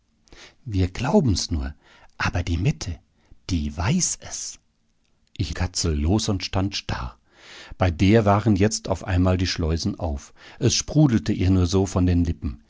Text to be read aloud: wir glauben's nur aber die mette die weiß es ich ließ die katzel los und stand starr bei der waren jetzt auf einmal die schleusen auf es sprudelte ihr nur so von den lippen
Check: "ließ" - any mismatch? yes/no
yes